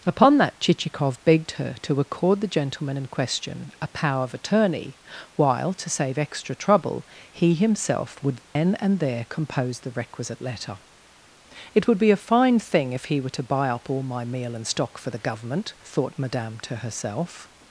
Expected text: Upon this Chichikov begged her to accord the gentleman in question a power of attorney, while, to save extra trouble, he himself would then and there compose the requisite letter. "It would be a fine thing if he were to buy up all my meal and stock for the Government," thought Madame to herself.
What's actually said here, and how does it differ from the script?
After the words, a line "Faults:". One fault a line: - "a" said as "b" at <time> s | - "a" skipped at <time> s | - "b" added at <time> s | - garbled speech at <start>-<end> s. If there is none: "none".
Upon that Chichikov begged her to accord the gentleman in question a power of attorney, while, to save extra trouble, he himself would then and there compose the requisite letter. "It would be a fine thing if he were to buy up all my meal and stock for the Government," thought Madame to herself.
Faults:
- "this" said as "that" at 0.4 s